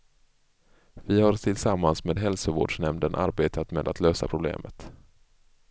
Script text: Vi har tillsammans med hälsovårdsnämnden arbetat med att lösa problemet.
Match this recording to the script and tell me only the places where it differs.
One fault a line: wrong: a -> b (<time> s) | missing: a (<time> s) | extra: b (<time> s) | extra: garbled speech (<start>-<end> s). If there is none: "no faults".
no faults